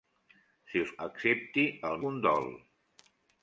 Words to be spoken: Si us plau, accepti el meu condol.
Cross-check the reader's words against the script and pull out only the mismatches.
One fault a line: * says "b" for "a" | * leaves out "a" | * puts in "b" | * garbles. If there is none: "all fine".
* leaves out "plau"
* leaves out "meu"